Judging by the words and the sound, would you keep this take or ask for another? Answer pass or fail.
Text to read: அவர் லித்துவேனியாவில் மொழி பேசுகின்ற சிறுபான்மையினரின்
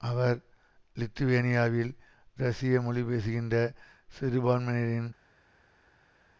fail